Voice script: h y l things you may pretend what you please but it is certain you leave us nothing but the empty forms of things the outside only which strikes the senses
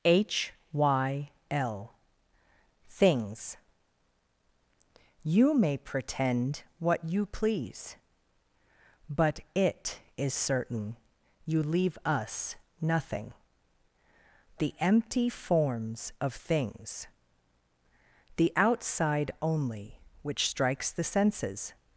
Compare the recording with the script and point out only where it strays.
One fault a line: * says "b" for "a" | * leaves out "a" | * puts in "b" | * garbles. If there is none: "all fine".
* leaves out "but"